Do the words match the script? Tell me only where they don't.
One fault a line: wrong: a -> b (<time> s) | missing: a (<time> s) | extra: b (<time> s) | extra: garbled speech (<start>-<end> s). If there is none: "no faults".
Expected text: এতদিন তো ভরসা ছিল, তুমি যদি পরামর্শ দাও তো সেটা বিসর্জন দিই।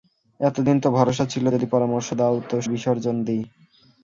missing: তুমি (1.4 s)
missing: সেটা (2.6 s)